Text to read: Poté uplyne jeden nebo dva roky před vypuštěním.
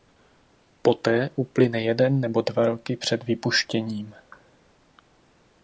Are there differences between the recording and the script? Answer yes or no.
no